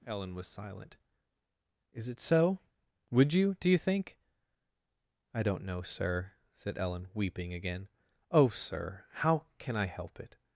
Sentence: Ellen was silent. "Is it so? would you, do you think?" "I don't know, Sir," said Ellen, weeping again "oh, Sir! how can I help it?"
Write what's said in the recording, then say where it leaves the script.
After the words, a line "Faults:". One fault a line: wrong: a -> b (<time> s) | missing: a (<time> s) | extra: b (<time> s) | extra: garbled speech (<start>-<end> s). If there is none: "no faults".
Ellen was silent. "Is it so? would you, do you think?" "I don't know, Sir," said Ellen, weeping again "oh, Sir! how can I help it?"
Faults:
no faults